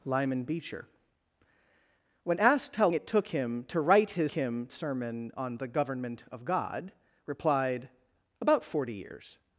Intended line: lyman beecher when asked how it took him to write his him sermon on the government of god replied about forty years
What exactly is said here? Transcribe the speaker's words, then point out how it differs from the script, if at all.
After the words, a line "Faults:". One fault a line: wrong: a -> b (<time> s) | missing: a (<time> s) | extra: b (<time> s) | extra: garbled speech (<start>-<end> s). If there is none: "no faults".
lyman beecher when asked how it took him to write his him sermon on the government of god replied about forty years
Faults:
no faults